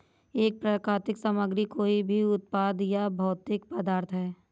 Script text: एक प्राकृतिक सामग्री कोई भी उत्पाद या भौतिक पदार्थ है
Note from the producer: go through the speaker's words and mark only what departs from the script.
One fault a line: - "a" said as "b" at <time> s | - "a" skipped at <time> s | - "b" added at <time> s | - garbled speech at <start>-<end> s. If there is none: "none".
none